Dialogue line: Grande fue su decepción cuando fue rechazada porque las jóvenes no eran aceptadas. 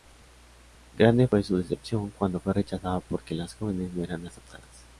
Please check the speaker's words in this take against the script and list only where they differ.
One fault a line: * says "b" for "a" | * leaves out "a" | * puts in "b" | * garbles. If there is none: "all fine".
all fine